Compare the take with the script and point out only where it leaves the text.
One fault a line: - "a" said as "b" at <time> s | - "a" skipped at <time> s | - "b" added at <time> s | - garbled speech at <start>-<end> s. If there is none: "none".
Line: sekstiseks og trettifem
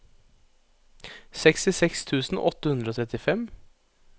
- "tusen åtte hundre" added at 2.1 s